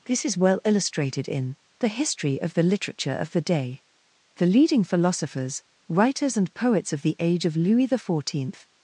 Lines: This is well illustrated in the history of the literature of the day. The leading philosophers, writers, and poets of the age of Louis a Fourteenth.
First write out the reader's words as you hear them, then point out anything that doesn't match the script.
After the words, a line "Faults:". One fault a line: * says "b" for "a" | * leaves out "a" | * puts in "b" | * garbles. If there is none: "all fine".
This is well illustrated in the history of the literature of the day. The leading philosophers, writers, and poets of the age of Louis the Fourteenth.
Faults:
* says "the" for "a"